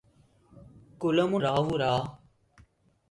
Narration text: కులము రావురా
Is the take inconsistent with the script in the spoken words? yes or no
no